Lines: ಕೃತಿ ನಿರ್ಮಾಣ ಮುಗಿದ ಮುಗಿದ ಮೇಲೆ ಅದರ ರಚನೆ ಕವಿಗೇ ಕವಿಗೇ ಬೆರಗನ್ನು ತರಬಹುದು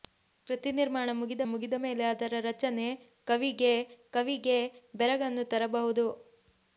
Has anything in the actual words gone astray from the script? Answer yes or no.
no